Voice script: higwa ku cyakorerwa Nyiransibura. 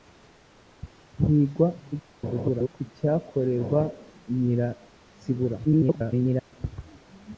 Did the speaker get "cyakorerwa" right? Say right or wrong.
right